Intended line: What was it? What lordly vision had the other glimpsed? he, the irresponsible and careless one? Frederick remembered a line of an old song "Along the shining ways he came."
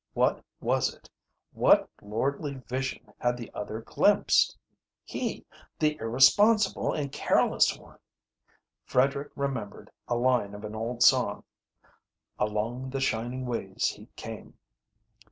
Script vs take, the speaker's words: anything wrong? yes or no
no